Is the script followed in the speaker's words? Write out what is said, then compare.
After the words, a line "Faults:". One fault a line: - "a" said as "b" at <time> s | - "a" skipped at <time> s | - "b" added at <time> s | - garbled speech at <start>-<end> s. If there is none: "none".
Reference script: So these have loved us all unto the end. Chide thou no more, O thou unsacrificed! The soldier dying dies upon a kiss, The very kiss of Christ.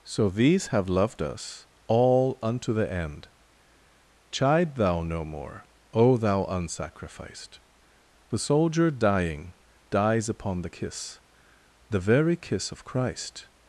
So these have loved us all unto the end. Chide thou no more, O thou unsacrificed! The soldier dying dies upon the kiss, The very kiss of Christ.
Faults:
- "a" said as "the" at 10.6 s